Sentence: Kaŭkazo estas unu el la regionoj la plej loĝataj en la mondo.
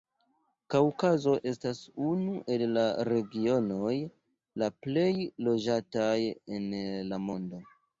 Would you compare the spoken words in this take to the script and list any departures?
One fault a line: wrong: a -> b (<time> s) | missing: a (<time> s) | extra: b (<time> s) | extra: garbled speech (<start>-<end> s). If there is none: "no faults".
no faults